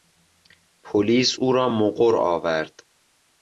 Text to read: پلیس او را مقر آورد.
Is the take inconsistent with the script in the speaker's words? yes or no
no